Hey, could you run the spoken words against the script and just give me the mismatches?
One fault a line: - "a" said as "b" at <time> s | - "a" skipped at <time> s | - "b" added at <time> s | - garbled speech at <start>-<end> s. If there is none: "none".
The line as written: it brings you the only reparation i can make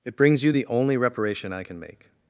none